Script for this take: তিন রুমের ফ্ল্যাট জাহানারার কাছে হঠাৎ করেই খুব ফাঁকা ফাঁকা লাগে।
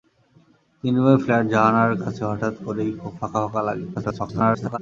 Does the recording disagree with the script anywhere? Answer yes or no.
yes